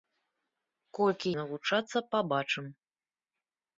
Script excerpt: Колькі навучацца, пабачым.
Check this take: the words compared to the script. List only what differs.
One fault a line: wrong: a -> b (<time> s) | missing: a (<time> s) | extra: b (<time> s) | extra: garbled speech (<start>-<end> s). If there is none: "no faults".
no faults